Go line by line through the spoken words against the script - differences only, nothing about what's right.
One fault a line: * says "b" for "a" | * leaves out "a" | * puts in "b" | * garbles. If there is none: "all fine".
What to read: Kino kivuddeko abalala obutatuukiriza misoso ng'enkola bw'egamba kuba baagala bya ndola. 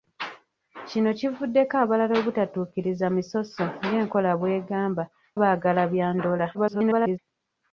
* leaves out "kuba"
* garbles